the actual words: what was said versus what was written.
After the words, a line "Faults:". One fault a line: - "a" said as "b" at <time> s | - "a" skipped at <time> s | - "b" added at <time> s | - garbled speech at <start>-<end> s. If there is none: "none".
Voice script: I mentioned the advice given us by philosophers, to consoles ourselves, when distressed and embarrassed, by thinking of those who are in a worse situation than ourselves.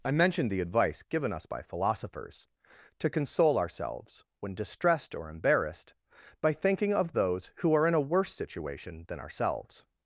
I mentioned the advice given us by philosophers, to console ourselves, when distressed or embarrassed, by thinking of those who are in a worse situation than ourselves.
Faults:
- "consoles" said as "console" at 3.1 s
- "and" said as "or" at 5.1 s